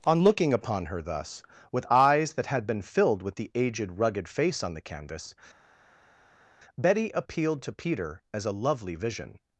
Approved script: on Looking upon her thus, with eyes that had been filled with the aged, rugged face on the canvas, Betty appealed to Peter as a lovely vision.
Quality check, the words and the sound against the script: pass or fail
pass